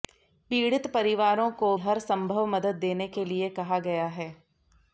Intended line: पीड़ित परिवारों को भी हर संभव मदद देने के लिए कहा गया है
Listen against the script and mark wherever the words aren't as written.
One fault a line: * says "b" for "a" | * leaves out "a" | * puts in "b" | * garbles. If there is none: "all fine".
* leaves out "भी"